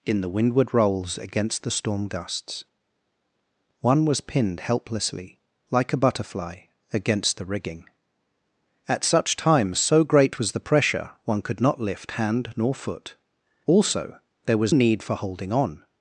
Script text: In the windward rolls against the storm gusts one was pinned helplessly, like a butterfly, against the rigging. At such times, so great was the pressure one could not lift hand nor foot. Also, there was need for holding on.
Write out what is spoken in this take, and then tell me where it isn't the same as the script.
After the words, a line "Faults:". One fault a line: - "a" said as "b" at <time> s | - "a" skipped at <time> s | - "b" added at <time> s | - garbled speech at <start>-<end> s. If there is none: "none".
In the windward rolls against the storm gusts one was pinned helplessly, like a butterfly, against the rigging. At such times, so great was the pressure one could not lift hand nor foot. Also, there was need for holding on.
Faults:
none